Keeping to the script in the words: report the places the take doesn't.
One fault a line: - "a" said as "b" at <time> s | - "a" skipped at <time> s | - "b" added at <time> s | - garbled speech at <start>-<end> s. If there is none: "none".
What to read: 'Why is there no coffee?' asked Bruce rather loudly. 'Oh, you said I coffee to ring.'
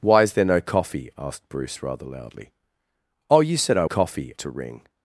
none